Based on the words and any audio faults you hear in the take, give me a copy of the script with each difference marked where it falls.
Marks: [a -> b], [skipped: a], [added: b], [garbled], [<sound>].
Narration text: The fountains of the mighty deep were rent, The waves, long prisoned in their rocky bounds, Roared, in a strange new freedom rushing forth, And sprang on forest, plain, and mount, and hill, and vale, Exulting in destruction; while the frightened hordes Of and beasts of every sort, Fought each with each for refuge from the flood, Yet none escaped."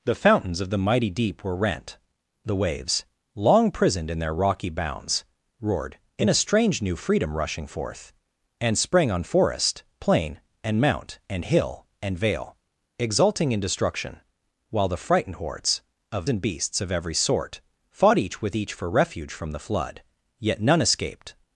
The fountains of the mighty deep were rent, The waves, long prisoned in their rocky bounds, Roared, in a strange new freedom rushing forth, And sprang on forest, plain, and mount, and hill, and vale, Exulting in destruction; while the frightened hordes Of and beasts of every sort, Fought each with each for refuge from the flood, Yet none escaped."